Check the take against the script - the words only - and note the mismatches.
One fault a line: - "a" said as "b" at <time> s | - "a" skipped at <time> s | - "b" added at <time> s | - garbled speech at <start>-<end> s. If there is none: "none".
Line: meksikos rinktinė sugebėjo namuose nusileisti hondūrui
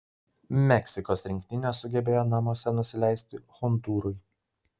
none